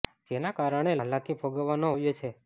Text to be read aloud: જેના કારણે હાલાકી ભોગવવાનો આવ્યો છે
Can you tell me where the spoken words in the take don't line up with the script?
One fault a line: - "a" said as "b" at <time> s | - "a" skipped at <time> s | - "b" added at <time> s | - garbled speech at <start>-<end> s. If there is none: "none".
none